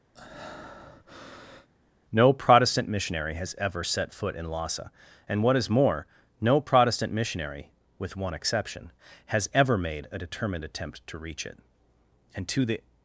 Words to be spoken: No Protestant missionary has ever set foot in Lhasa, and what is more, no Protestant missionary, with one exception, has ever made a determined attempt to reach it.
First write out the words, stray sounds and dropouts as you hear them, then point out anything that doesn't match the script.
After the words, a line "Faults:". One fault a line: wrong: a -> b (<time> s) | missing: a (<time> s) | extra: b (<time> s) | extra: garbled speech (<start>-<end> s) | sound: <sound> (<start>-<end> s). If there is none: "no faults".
No Protestant missionary has ever set foot in Lhasa, and what is more, no Protestant missionary, with one exception, has ever made a determined attempt to reach it. And to the
Faults:
sound: breath (0.1-1.7 s)
extra: And to the (12.3 s)